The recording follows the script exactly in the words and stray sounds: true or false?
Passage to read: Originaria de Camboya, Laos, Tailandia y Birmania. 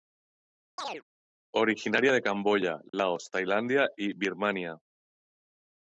false